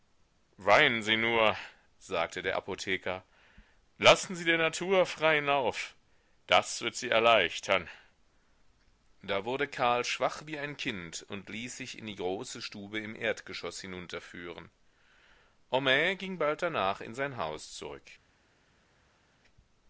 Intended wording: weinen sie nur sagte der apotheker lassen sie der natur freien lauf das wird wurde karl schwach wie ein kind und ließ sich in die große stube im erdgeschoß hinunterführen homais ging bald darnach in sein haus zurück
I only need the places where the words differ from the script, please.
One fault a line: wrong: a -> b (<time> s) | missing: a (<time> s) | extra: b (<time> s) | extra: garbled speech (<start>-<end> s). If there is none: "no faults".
extra: sie erleichtern da (6.9 s)